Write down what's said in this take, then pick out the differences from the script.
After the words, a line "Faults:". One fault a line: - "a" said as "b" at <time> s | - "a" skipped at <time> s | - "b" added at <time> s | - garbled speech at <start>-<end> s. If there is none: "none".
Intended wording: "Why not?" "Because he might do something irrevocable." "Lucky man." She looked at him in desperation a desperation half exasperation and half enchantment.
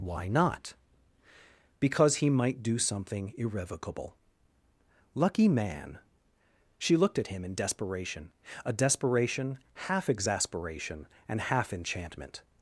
"Why not?" "Because he might do something irrevocable." "Lucky man." She looked at him in desperation a desperation half exasperation and half enchantment.
Faults:
none